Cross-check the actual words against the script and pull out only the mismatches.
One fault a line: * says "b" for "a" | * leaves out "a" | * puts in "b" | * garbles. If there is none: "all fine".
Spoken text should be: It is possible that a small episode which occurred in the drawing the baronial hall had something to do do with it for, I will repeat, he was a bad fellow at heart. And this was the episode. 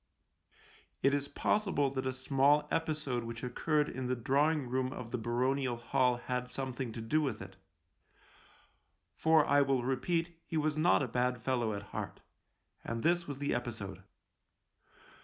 * puts in "room of"
* leaves out "do"
* puts in "not"